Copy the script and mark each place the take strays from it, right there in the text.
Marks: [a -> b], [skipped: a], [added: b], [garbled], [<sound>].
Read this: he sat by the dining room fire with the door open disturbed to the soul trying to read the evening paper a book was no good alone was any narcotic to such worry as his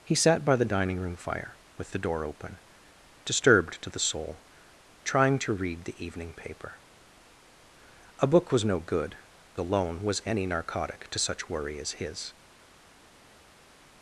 he sat by the dining room fire with the door open disturbed to the soul trying to read the evening paper a book was no good alone was any narcotic to such worry as his